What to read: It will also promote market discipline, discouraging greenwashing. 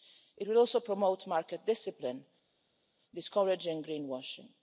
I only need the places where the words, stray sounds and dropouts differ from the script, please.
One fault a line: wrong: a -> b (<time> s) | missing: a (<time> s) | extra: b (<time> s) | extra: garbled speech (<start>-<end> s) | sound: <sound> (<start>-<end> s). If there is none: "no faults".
no faults